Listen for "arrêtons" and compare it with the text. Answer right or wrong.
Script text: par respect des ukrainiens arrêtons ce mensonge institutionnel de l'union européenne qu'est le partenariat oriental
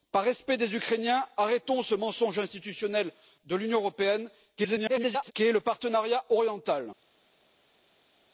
right